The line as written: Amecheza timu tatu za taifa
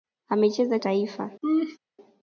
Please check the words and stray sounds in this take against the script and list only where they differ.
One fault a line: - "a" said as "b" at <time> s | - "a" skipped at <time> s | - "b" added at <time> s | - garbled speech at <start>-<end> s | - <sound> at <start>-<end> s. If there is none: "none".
- "timu tatu za" skipped at 0.8 s
- laugh at 1.4-1.8 s